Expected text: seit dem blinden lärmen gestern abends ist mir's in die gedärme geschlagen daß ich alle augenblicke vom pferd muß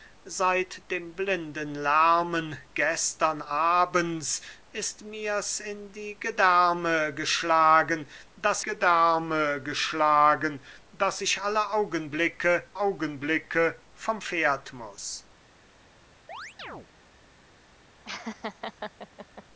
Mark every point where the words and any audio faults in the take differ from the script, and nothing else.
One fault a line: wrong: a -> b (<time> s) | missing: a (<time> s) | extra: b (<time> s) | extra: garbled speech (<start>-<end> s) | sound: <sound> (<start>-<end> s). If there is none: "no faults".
extra: gedärme geschlagen daß (8.6 s)
extra: augenblicke (12.8 s)
sound: chirp (16.3-16.9 s)
sound: laugh (18.0-19.4 s)